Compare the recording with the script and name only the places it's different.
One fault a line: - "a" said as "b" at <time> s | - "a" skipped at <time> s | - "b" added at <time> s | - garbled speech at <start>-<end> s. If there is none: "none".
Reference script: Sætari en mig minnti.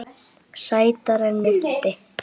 - "mig" skipped at 1.4 s